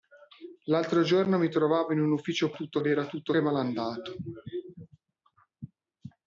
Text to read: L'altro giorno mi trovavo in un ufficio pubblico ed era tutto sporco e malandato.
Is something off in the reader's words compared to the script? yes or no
yes